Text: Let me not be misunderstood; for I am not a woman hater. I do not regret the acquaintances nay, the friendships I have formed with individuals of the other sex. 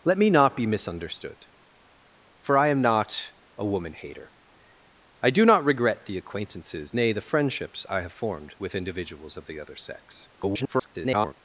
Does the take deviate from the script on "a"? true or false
false